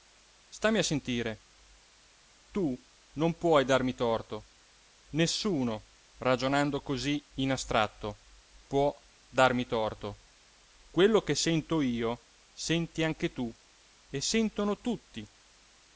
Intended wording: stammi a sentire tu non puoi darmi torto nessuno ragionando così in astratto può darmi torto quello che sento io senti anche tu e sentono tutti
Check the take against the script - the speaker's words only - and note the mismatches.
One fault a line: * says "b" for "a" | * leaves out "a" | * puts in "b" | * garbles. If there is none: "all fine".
all fine